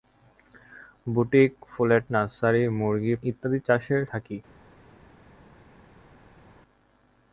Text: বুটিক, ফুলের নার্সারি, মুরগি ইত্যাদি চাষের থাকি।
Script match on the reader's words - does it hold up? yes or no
yes